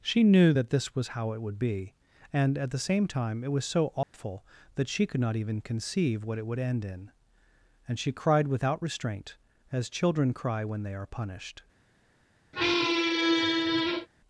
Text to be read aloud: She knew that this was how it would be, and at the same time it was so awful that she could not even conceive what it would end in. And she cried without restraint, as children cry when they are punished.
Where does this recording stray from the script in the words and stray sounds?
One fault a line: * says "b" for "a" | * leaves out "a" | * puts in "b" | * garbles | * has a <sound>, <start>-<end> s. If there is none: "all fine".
* has a dropout, 4.0-4.1 s
* has a squeak, 12.5-14.1 s